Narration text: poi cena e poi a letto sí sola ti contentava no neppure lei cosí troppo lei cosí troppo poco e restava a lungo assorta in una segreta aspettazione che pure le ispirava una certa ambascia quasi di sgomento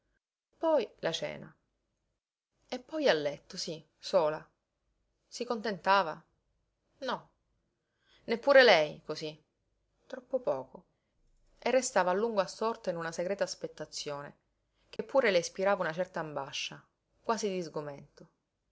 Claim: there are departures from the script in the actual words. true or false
true